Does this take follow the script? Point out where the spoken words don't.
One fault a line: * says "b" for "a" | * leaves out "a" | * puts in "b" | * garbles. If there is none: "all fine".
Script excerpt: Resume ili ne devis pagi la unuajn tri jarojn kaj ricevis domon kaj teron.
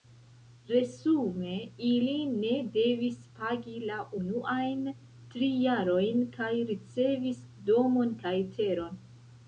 all fine